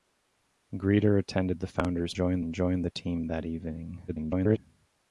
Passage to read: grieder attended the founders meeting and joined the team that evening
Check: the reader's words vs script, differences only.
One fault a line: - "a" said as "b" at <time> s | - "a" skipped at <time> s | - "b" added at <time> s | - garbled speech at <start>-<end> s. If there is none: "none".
- "meeting" said as "joined" at 2.1 s
- garbled speech at 4.1-4.6 s